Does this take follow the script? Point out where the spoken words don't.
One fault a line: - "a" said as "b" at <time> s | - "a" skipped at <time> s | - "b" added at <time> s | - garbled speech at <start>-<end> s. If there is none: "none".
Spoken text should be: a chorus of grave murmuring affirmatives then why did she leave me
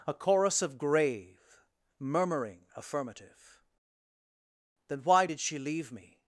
- "affirmatives" said as "affirmative" at 2.7 s